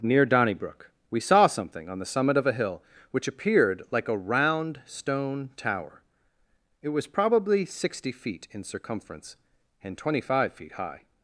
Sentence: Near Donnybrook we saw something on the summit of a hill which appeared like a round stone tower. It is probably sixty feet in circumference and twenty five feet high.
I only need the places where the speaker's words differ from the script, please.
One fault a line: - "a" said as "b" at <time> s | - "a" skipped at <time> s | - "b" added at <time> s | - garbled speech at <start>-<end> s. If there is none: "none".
- "is" said as "was" at 6.9 s